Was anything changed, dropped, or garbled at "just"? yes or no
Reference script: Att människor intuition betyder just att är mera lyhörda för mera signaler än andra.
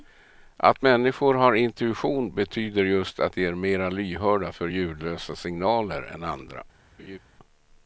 no